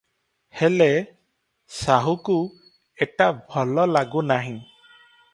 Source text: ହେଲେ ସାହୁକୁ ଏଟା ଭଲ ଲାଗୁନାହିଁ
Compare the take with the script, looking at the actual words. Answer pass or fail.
pass